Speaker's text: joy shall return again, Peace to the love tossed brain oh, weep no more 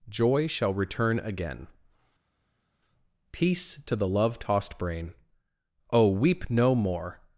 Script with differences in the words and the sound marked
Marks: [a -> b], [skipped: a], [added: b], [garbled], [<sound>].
joy shall return again, Peace to the love tossed brain oh, weep no more